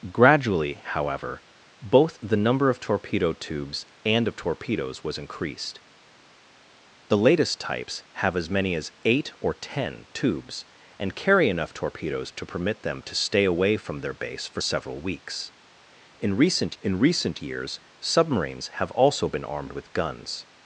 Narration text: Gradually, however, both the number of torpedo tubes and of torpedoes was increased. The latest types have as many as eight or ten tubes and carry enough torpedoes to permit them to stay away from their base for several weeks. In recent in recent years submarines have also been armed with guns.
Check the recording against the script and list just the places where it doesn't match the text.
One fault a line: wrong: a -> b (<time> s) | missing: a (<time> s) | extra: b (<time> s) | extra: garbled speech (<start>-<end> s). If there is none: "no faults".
no faults